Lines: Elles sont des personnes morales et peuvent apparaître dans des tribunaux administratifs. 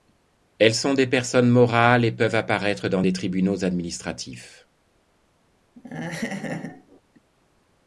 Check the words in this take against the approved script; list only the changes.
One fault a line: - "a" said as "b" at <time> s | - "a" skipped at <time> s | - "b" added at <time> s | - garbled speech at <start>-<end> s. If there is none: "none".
none